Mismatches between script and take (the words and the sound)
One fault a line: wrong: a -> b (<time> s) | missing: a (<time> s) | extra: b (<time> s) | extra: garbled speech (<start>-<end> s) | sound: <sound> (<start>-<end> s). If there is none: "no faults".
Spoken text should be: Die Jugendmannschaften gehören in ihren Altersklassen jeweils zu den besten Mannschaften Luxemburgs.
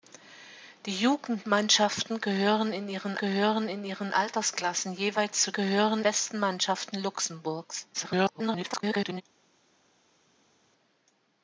extra: gehören in ihren (3.2 s)
wrong: den -> gehören (5.5 s)
extra: garbled speech (7.9-9.2 s)